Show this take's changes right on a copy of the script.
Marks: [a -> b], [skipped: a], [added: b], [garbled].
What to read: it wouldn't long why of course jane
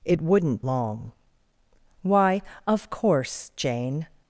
it wouldn't long why of course jane